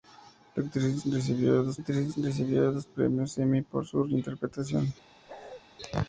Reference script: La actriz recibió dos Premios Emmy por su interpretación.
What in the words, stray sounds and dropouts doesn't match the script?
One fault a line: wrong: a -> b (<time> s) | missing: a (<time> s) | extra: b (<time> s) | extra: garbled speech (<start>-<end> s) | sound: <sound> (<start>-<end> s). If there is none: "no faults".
extra: actriz recibió dos (1.8 s)
sound: bark (5.3-5.6 s)